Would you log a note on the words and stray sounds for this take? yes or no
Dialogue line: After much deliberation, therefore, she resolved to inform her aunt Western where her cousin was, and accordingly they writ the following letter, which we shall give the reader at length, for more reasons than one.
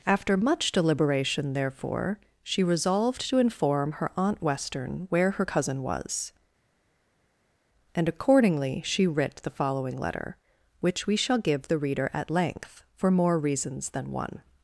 yes